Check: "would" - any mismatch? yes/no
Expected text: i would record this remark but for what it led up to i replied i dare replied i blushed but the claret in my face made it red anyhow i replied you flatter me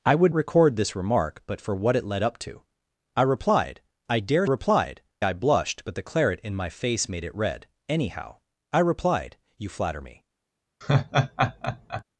no